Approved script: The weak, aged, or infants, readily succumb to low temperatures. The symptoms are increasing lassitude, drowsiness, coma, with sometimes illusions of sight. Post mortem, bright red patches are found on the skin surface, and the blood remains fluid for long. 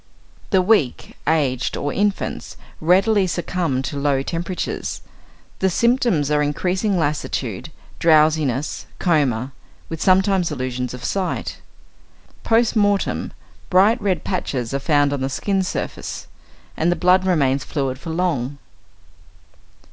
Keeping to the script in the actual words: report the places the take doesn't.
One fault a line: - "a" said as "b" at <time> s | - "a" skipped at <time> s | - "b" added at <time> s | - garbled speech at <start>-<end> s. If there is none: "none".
none